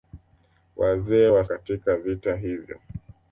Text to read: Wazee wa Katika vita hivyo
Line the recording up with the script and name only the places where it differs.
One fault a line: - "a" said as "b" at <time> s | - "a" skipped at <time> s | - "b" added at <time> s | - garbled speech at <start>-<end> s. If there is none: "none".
none